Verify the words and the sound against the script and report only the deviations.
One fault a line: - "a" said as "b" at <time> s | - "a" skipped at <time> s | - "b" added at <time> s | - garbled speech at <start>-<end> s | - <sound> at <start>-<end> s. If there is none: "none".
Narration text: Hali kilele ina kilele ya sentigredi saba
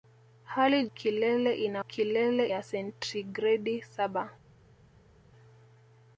none